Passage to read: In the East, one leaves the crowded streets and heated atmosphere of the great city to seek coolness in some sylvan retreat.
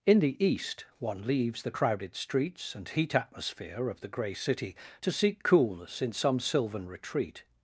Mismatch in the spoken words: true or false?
true